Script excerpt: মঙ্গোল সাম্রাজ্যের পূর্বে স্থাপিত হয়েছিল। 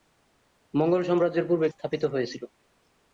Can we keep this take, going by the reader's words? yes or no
yes